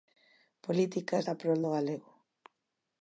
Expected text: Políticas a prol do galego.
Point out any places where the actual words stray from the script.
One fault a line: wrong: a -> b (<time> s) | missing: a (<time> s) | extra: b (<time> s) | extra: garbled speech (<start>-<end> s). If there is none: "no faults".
no faults